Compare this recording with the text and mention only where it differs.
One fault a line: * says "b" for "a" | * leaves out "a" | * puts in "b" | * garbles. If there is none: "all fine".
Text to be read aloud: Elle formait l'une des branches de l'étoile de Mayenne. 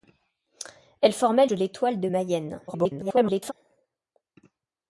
* leaves out "l'une des branches"
* garbles